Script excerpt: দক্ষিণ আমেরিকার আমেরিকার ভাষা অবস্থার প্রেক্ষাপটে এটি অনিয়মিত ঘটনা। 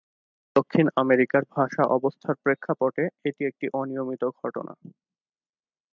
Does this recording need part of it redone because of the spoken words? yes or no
yes